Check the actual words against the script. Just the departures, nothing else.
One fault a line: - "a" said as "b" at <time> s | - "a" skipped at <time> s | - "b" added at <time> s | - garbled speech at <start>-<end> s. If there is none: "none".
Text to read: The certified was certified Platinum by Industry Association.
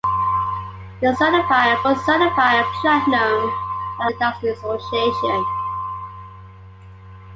none